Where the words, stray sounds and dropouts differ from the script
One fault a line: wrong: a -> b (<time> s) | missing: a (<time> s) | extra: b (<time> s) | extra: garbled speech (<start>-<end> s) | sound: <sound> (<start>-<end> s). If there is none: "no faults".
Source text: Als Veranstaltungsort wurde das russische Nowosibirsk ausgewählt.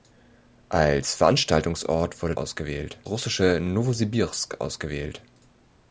wrong: das -> ausgewählt (2.4 s)